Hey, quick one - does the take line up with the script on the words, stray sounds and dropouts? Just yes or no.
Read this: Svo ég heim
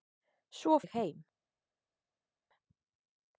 yes